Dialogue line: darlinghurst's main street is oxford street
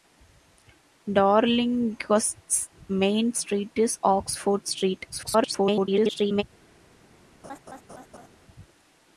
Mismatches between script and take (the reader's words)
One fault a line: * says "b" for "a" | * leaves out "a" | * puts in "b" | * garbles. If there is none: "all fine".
* garbles